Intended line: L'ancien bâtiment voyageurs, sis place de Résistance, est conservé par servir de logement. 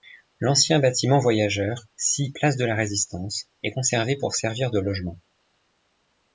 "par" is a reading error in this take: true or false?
true